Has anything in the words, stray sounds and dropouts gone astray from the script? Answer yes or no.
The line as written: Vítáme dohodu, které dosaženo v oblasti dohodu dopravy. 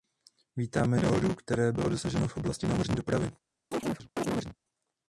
yes